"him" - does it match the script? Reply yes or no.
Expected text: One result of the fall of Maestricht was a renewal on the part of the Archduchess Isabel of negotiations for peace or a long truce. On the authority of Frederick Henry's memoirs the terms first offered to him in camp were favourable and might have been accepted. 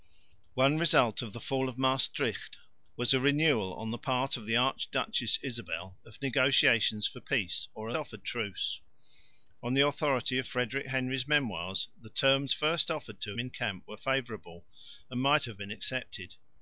no